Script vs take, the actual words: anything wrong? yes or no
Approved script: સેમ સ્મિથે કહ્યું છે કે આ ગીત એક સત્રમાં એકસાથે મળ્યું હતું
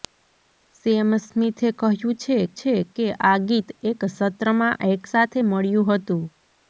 yes